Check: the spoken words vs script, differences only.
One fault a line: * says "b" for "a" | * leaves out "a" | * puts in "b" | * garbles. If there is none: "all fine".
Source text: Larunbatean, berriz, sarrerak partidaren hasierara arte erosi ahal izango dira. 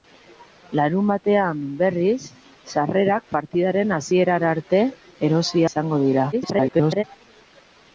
* leaves out "ahal"
* garbles